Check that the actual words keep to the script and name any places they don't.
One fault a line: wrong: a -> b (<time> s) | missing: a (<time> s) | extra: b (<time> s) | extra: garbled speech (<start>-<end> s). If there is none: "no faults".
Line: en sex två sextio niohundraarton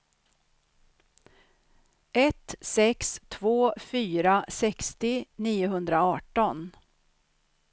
wrong: en -> ett (2.1 s)
extra: fyra (3.8 s)